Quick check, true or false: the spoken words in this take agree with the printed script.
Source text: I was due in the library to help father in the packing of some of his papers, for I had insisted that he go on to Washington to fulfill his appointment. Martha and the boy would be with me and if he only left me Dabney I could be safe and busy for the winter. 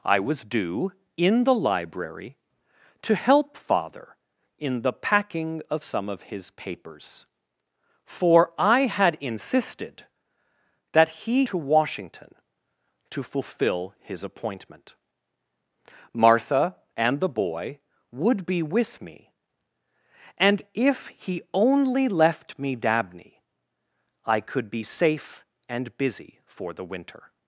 false